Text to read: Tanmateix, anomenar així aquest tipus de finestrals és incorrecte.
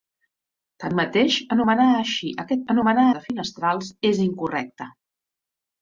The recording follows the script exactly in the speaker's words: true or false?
false